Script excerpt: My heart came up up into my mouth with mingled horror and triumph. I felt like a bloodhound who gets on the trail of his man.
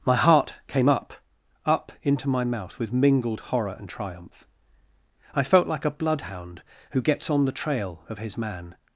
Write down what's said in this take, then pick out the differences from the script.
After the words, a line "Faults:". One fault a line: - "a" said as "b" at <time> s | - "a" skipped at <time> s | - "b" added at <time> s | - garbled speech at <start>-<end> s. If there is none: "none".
My heart came up up into my mouth with mingled horror and triumph. I felt like a bloodhound who gets on the trail of his man.
Faults:
none